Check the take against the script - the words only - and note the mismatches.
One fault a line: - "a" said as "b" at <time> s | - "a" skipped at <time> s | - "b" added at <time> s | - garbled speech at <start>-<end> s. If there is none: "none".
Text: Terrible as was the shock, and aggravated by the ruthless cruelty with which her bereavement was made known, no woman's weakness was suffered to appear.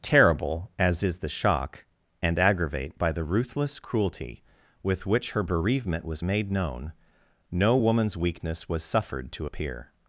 - "was" said as "is" at 1.0 s
- "aggravated" said as "aggravate" at 2.4 s